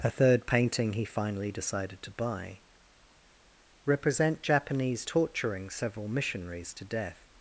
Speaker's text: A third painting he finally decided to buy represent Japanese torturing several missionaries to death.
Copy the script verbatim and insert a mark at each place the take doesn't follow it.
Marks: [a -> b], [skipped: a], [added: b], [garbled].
A third painting he finally decided to buy represent Japanese torturing several missionaries to death.